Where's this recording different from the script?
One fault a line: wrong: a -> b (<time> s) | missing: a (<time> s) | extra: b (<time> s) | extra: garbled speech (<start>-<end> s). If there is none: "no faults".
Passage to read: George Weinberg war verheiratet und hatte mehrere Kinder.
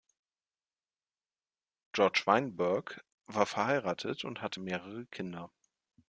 no faults